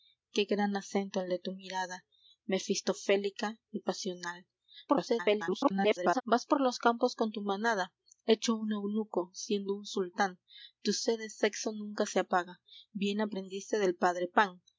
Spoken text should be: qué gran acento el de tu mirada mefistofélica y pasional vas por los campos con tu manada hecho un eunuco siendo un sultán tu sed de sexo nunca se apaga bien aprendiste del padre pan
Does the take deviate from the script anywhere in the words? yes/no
yes